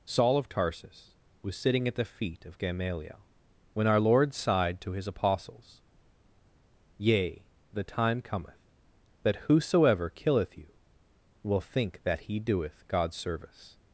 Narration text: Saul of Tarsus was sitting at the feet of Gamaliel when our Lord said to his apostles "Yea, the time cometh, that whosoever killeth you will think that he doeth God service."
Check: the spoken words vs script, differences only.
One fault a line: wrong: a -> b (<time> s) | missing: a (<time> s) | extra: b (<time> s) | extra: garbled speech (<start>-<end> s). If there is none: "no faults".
wrong: said -> sighed (4.3 s)